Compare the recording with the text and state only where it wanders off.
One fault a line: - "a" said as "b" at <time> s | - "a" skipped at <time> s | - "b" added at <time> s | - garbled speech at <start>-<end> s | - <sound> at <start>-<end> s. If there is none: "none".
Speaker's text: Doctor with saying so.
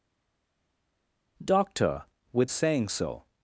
none